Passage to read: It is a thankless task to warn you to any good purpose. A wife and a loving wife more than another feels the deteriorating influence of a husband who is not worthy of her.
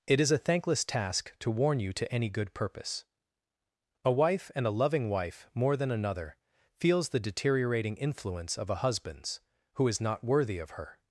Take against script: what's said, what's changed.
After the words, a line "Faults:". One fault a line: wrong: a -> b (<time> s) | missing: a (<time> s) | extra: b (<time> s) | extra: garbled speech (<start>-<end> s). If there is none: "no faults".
It is a thankless task to warn you to any good purpose. A wife and a loving wife more than another feels the deteriorating influence of a husbands who is not worthy of her.
Faults:
wrong: husband -> husbands (8.8 s)